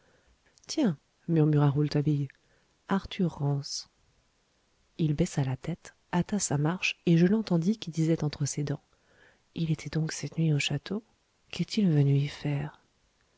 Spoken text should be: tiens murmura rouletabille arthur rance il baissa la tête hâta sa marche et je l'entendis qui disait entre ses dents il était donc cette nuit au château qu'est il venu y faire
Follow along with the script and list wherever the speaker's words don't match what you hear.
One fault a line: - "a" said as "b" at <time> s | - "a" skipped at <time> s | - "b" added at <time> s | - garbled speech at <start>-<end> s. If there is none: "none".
none